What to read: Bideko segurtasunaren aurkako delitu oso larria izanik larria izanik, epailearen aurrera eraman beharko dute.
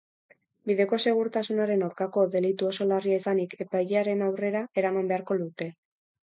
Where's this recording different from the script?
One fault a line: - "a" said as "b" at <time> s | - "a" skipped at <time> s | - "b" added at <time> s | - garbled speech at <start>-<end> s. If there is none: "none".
- "larria izanik" skipped at 3.6 s